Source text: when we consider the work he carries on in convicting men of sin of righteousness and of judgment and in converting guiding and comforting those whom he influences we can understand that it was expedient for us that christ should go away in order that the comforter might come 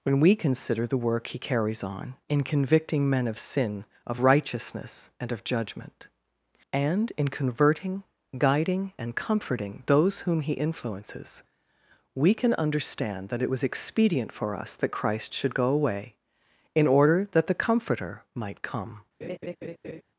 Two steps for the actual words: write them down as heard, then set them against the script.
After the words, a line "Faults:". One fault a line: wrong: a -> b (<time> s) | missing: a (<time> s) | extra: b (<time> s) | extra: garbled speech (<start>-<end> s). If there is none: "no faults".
when we consider the work he carries on in convicting men of sin of righteousness and of judgment and in converting guiding and comforting those whom he influences we can understand that it was expedient for us that christ should go away in order that the comforter might come
Faults:
no faults